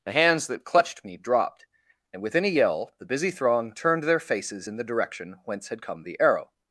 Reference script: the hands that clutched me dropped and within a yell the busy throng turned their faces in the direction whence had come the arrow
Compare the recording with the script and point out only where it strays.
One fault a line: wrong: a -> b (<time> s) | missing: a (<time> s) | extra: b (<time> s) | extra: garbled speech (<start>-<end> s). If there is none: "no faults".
no faults